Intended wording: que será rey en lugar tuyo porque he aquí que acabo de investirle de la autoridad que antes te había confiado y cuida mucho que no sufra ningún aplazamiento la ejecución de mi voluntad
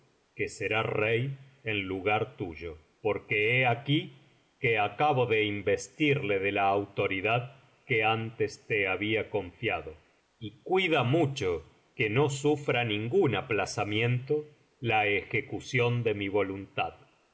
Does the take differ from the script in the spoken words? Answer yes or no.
no